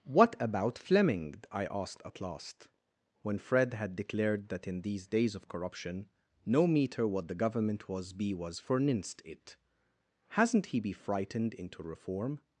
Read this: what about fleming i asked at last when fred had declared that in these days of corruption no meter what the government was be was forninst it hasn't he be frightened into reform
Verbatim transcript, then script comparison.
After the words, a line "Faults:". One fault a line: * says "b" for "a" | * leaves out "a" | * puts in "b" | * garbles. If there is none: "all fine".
what about fleming i asked at last when fred had declared that in these days of corruption no meter what the government was be was forninst it hasn't he be frightened into reform
Faults:
all fine